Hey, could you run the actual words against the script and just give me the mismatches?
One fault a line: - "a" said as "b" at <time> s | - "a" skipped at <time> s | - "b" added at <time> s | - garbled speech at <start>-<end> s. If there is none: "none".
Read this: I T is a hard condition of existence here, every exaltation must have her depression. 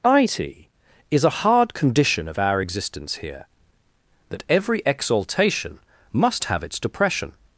- "our" added at 2.4 s
- "that" added at 4.3 s
- "her" said as "its" at 6.6 s